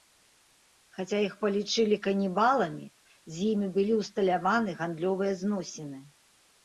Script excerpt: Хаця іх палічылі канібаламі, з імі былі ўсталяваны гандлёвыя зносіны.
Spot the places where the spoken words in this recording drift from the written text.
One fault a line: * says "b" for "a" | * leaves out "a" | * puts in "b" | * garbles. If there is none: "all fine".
all fine